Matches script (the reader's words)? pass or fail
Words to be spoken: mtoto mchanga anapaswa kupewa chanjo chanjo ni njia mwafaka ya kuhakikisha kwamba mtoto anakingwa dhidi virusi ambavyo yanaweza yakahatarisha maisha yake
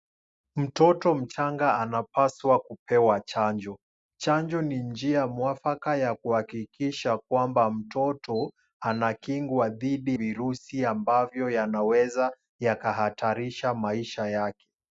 pass